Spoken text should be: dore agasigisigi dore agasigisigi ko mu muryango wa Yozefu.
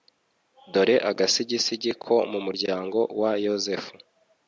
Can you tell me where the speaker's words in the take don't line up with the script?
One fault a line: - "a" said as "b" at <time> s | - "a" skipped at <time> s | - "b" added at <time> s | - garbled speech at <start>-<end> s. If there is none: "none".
- "dore agasigisigi" skipped at 1.9 s